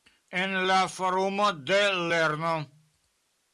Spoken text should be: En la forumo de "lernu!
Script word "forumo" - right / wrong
right